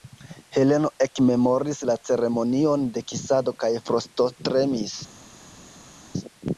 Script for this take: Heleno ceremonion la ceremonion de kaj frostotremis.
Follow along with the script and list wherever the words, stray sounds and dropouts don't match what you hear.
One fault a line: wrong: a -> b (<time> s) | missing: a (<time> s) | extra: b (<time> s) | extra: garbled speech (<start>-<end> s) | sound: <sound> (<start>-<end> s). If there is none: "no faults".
wrong: ceremonion -> ekmemoris (1.1 s)
extra: kisado (3.1 s)